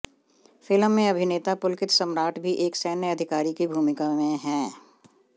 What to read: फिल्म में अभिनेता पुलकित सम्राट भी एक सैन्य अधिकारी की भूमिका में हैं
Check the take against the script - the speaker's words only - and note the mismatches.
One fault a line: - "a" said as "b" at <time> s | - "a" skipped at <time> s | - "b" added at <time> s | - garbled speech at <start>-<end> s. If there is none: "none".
none